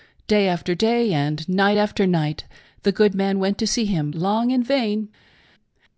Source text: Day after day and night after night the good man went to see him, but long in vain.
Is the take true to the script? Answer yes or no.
no